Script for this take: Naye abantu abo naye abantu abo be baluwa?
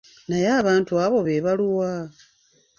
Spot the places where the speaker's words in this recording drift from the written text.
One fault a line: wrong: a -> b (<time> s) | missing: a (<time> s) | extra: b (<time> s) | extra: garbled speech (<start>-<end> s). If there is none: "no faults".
missing: naye abantu abo (1.2 s)